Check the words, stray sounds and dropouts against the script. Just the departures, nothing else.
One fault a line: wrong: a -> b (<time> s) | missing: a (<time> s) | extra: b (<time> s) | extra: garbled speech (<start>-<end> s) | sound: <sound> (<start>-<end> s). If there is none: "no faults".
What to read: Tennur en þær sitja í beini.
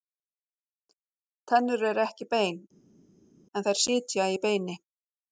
extra: eru ekki bein (1.9 s)